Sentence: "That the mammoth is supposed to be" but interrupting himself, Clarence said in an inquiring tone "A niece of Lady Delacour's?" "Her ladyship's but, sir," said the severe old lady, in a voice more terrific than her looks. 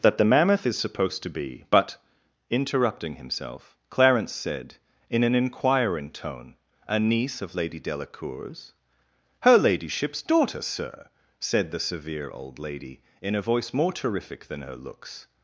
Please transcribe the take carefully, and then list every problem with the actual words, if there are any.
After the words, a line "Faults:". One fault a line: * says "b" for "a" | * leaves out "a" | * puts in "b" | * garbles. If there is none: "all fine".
"That the mammoth is supposed to be" but interrupting himself, Clarence said in an inquiring tone "A niece of Lady Delacour's?" "Her ladyship's daughter, sir," said the severe old lady, in a voice more terrific than her looks.
Faults:
* says "daughter" for "but"